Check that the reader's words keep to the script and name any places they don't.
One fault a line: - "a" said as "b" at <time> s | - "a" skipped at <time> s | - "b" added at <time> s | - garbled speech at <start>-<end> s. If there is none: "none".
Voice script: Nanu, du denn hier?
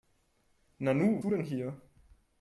none